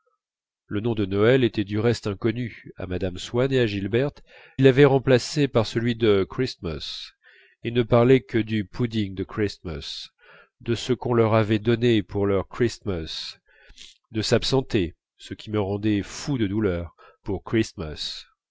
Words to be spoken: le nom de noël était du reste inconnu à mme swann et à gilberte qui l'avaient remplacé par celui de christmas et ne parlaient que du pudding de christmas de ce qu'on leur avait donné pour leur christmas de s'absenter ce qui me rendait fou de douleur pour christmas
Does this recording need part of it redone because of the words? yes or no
yes